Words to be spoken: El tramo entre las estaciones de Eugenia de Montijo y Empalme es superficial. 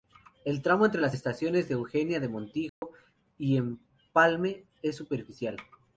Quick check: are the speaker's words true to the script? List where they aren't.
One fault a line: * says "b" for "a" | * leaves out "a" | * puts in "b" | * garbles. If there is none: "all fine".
all fine